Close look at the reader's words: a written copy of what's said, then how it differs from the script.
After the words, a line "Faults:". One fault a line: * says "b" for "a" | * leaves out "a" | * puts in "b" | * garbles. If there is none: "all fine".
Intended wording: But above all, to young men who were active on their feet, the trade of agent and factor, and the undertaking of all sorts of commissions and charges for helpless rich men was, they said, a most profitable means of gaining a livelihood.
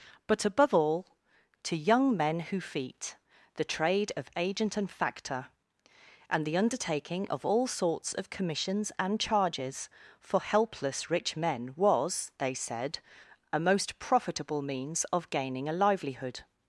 But above all, to young men who feet, the trade of agent and factor, and the undertaking of all sorts of commissions and charges for helpless rich men was, they said, a most profitable means of gaining a livelihood.
Faults:
* leaves out "were active on their"